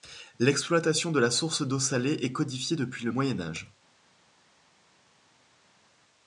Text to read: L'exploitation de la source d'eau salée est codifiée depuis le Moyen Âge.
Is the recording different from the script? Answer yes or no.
no